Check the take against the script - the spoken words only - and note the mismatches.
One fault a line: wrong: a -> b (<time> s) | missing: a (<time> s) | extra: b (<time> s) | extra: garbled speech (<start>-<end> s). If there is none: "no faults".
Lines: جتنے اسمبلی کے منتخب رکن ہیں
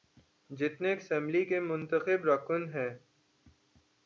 no faults